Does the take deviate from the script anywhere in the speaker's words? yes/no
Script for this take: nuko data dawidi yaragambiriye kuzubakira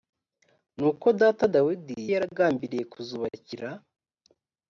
no